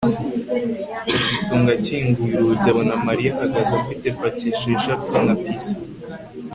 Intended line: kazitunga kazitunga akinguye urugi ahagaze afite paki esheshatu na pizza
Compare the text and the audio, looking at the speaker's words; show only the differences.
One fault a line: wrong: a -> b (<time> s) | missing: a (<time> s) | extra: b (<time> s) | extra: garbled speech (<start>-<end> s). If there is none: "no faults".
missing: kazitunga (1.7 s)
extra: abona Mariya (2.7 s)